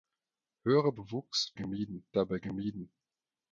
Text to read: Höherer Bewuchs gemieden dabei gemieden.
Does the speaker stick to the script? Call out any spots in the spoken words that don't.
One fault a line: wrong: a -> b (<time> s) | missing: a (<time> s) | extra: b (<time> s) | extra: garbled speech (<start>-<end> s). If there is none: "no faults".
no faults